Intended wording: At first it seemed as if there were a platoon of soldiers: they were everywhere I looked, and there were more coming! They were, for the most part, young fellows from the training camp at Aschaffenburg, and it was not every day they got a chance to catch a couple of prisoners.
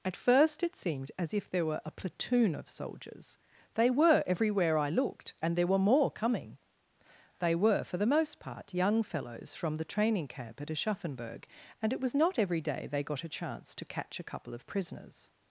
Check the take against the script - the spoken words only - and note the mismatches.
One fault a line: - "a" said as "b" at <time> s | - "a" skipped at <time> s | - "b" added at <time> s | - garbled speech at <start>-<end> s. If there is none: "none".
none